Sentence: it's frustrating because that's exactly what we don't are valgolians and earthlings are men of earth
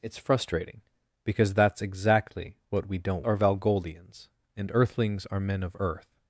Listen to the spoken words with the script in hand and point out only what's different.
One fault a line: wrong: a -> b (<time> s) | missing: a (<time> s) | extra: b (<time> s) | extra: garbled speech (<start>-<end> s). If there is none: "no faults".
no faults